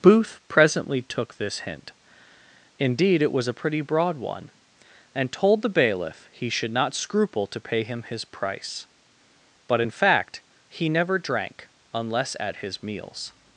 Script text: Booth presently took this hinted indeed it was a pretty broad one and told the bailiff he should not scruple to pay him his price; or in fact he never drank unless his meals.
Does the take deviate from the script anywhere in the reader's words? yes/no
yes